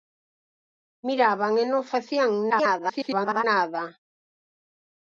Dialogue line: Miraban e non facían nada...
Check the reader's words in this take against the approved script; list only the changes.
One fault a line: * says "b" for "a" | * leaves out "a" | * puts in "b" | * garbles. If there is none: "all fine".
* garbles